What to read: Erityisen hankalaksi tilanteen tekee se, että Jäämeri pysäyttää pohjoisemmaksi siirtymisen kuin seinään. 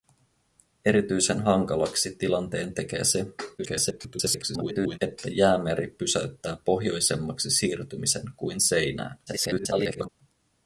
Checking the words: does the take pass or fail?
fail